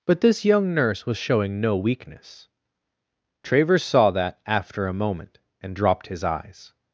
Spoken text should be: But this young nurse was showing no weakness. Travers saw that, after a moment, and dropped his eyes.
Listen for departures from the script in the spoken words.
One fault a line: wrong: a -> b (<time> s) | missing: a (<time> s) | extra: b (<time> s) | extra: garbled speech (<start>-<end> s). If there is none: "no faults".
no faults